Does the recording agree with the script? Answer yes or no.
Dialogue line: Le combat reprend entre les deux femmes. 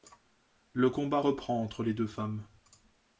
yes